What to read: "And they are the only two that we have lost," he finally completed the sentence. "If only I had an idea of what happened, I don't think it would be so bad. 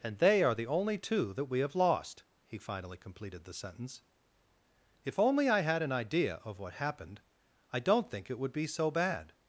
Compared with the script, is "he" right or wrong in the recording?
right